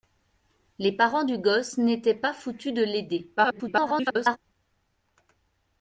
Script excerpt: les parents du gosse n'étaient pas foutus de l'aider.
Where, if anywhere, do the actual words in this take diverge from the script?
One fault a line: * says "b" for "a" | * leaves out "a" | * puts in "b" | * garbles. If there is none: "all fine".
* garbles